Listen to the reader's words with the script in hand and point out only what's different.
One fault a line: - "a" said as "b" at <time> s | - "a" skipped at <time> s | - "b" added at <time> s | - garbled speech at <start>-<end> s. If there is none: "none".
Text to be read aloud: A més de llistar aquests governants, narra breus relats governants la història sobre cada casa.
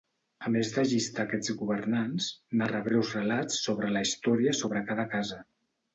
- "governants" said as "sobre" at 3.7 s